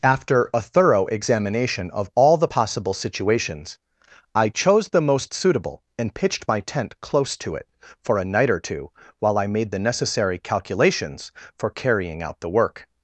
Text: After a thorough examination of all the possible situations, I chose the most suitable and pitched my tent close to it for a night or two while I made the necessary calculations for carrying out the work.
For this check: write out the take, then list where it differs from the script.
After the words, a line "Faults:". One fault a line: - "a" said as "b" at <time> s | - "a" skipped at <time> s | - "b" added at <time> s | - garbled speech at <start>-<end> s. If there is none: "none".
After a thorough examination of all the possible situations, I chose the most suitable and pitched my tent close to it for a night or two while I made the necessary calculations for carrying out the work.
Faults:
none